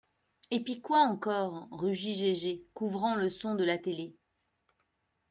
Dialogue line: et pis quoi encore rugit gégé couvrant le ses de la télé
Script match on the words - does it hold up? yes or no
no